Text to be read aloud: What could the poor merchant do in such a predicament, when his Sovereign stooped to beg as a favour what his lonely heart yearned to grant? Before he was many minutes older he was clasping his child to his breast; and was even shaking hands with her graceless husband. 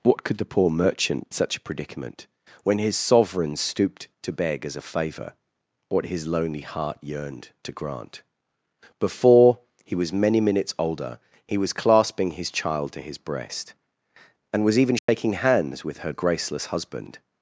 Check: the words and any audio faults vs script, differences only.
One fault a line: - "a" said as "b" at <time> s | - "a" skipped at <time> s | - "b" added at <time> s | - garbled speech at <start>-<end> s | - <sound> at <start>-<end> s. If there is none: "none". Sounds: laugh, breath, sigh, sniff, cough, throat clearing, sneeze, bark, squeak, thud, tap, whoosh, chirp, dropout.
- "do in" skipped at 1.3 s
- dropout at 15.0-15.1 s